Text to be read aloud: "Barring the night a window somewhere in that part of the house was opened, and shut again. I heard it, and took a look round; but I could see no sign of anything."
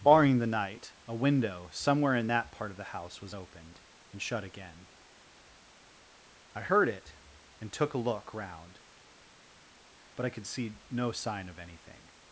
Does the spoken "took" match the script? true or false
true